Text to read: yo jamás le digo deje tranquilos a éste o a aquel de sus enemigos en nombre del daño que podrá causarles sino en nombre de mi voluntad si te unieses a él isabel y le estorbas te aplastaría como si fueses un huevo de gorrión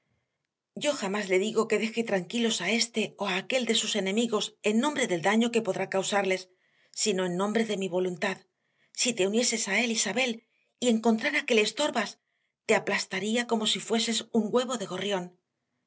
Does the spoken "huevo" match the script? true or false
true